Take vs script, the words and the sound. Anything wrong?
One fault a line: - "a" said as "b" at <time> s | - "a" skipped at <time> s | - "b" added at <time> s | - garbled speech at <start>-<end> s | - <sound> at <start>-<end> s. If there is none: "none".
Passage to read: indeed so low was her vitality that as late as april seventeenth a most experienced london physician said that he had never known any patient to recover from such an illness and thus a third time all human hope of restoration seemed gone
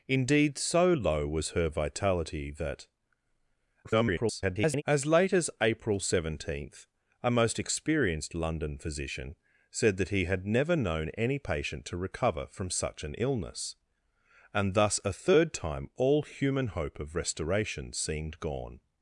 - garbled speech at 3.8-4.8 s